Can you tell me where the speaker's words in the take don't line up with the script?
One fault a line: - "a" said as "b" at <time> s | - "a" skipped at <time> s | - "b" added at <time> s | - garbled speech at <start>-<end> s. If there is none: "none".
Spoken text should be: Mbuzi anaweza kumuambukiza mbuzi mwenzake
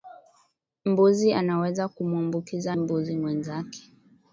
none